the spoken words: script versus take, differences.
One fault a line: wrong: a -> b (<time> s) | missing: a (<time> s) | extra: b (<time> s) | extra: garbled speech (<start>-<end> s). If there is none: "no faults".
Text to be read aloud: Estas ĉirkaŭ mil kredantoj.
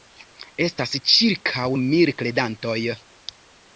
no faults